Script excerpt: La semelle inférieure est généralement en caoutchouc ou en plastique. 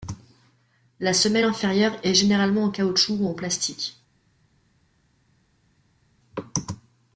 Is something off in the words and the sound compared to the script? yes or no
no